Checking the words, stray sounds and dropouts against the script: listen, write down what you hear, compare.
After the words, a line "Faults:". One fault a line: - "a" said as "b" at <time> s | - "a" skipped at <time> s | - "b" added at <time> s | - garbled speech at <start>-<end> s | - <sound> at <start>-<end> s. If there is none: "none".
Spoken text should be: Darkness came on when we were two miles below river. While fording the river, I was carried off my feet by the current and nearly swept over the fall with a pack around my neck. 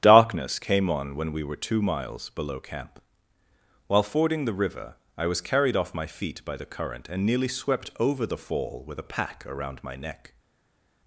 Darkness came on when we were two miles below camp. While fording the river, I was carried off my feet by the current and nearly swept over the fall with a pack around my neck.
Faults:
- "river" said as "camp" at 2.6 s